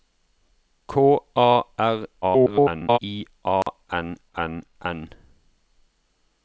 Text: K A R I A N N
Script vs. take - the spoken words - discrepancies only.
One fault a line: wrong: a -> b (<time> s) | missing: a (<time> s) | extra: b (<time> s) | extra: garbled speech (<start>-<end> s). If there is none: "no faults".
extra: garbled speech (2.2-3.0 s)
extra: N (4.8 s)